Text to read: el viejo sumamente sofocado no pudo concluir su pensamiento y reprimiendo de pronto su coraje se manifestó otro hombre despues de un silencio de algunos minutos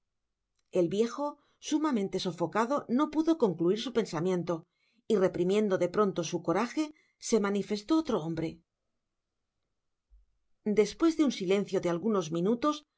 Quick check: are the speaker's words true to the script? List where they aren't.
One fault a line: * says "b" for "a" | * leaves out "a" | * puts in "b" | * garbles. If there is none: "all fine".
all fine